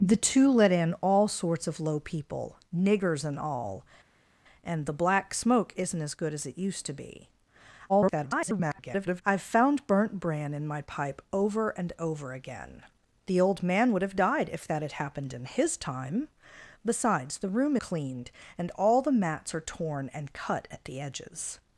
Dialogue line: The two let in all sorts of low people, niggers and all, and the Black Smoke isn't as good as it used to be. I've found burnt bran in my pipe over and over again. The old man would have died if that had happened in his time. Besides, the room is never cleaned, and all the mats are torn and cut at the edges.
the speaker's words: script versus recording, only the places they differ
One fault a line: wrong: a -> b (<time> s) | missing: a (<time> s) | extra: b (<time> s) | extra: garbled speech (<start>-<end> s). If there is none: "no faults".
extra: garbled speech (7.9-9.2 s)
missing: is never (17.8 s)